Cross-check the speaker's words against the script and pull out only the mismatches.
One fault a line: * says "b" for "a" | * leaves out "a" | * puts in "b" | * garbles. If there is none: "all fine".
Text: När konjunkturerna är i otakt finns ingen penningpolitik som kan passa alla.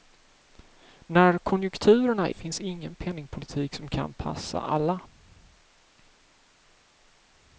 * leaves out "i otakt"